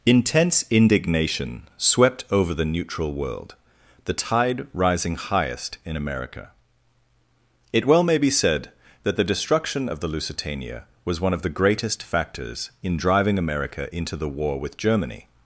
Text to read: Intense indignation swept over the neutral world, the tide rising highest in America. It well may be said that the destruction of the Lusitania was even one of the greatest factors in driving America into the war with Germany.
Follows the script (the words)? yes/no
no